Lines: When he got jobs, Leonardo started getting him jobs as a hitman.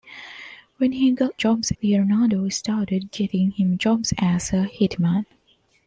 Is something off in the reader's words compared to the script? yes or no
no